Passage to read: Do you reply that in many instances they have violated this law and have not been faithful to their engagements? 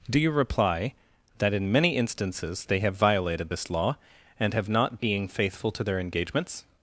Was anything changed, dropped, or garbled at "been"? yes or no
yes